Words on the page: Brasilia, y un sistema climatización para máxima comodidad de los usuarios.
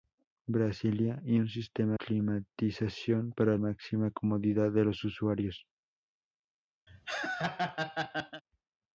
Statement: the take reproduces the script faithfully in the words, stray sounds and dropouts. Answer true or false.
false